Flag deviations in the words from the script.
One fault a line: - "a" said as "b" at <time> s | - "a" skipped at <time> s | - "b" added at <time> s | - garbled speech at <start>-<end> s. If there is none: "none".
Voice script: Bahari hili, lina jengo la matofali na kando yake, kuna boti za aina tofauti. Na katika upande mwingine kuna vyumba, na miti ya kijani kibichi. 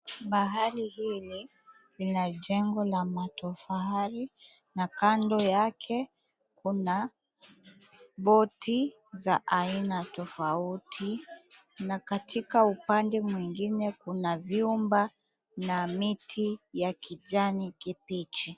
none